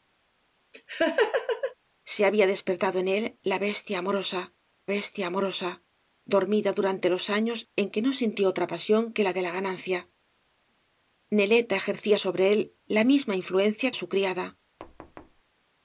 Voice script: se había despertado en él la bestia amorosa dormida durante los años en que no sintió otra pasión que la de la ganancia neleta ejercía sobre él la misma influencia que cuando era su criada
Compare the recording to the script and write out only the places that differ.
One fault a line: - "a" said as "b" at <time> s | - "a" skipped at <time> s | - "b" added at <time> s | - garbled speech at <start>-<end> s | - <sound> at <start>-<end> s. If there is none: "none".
- laugh at 0.7-1.7 s
- "bestia amorosa" added at 4.9 s
- "que cuando era" skipped at 13.9 s
- thud at 14.8-15.4 s